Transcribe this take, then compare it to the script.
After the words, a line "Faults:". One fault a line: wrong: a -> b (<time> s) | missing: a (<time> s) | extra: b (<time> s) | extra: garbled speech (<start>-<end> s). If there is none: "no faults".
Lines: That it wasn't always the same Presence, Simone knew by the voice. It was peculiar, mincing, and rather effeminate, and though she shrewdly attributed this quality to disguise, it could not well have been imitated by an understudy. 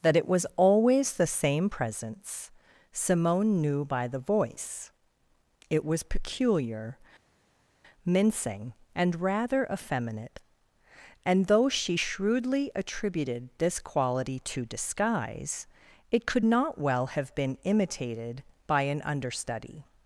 That it was always the same Presence, Simone knew by the voice. It was peculiar, mincing, and rather effeminate, and though she shrewdly attributed this quality to disguise, it could not well have been imitated by an understudy.
Faults:
wrong: wasn't -> was (0.3 s)